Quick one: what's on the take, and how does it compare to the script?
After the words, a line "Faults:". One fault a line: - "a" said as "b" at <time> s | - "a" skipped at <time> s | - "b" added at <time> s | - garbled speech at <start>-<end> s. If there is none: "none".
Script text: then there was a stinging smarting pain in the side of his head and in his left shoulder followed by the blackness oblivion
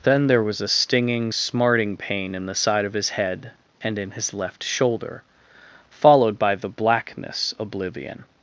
then there was a stinging smarting pain in the side of his head and in his left shoulder followed by the blackness oblivion
Faults:
none